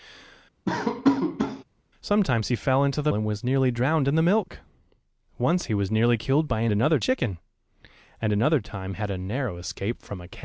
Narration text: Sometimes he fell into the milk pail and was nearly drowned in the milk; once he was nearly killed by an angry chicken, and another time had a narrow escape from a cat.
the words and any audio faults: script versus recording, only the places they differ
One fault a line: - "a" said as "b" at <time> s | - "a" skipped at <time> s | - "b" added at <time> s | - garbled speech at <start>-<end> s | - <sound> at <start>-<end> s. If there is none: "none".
- laugh at 0.7-1.6 s
- "milk pail" skipped at 3.1 s
- "angry" said as "another" at 6.7 s